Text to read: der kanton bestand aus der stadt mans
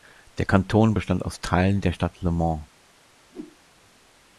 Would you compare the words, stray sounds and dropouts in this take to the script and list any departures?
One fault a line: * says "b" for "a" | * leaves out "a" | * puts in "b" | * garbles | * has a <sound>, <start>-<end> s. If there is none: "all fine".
* puts in "teilen"
* puts in "le"
* has a whoosh, 3.3-3.6 s